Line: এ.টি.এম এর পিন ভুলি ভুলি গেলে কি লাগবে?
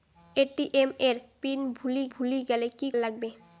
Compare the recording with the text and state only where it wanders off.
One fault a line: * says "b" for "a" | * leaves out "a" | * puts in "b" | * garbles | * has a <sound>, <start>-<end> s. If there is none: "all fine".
all fine